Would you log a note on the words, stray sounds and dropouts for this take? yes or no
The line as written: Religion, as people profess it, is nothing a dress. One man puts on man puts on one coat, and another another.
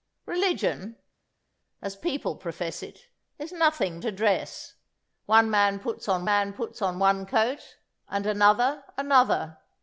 no